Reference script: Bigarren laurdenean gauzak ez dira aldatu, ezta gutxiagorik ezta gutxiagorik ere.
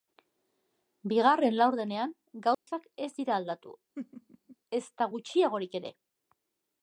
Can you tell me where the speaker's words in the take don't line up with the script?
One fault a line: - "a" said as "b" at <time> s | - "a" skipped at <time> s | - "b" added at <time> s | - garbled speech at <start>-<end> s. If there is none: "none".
- "ezta gutxiagorik" skipped at 5.8 s